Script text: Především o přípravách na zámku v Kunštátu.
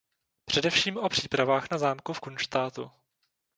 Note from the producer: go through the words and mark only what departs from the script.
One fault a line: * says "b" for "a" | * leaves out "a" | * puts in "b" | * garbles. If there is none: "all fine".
all fine